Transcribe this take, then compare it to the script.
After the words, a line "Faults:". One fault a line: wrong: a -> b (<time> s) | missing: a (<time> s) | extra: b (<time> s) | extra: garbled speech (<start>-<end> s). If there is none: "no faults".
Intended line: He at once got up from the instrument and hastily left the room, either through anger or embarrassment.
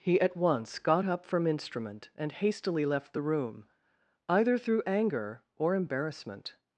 He at once got up from instrument and hastily left the room, either through anger or embarrassment.
Faults:
missing: the (1.4 s)